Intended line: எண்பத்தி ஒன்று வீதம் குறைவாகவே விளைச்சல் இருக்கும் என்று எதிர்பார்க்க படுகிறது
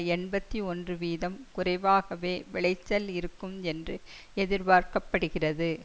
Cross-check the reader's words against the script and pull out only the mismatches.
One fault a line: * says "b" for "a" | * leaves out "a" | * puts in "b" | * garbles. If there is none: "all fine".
all fine